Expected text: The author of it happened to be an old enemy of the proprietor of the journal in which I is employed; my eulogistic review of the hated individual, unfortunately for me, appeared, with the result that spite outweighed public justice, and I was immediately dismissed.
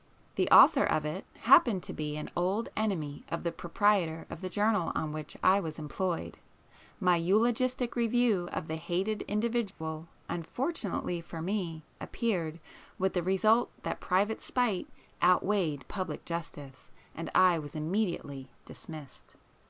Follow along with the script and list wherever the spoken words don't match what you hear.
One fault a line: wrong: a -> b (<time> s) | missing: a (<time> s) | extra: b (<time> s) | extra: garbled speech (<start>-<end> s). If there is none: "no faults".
wrong: in -> on (5.0 s)
wrong: is -> was (5.6 s)
extra: private (14.0 s)